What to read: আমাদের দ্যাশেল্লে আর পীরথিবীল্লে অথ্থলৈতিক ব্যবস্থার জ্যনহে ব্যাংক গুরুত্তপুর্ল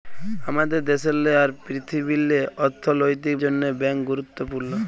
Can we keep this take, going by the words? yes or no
no